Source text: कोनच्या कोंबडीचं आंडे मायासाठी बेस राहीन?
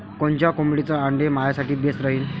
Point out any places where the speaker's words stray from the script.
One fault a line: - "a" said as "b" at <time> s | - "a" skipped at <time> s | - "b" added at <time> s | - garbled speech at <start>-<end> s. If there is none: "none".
none